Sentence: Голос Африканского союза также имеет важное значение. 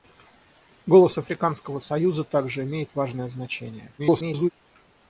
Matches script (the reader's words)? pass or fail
fail